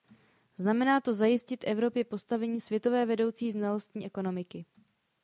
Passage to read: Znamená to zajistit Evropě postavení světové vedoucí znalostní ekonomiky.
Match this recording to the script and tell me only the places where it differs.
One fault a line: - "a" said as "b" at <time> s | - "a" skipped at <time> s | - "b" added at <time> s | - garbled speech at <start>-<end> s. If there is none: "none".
none